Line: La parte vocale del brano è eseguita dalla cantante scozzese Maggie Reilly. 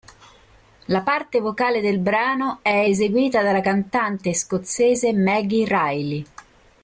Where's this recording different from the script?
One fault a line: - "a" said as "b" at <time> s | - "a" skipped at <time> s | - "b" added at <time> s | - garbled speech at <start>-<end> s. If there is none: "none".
none